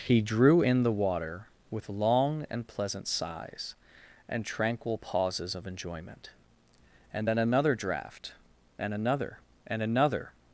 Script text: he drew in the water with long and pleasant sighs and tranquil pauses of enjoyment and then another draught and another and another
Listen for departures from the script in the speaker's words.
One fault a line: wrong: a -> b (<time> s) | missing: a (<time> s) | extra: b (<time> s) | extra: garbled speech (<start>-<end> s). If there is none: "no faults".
no faults